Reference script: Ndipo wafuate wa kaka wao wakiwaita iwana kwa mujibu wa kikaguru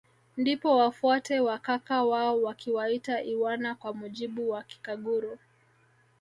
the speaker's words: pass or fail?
pass